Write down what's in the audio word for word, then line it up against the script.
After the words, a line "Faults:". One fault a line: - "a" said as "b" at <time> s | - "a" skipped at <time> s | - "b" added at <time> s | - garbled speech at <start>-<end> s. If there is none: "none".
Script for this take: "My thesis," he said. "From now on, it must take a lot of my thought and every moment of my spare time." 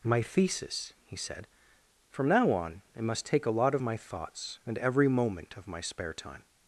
"My thesis," he said. "From now on, it must take a lot of my thoughts and every moment of my spare time."
Faults:
- "thought" said as "thoughts" at 4.0 s